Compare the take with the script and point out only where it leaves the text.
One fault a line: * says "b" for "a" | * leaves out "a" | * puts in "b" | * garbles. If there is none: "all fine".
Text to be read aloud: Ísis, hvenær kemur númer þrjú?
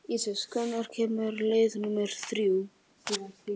* puts in "leið"